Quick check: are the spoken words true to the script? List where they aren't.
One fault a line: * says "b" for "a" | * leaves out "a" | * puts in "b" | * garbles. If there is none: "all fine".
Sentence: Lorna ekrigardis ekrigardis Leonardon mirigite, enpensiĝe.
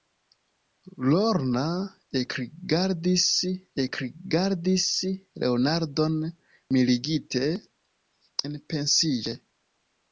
all fine